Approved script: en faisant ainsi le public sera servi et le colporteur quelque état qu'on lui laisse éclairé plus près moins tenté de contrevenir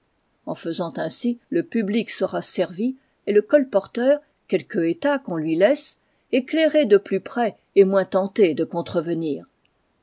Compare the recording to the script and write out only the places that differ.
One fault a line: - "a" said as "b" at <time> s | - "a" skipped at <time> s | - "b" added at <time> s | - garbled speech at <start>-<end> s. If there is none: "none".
- "de" added at 6.9 s
- "et" added at 7.7 s